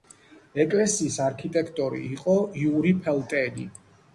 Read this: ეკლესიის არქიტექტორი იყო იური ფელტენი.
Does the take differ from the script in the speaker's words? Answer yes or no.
no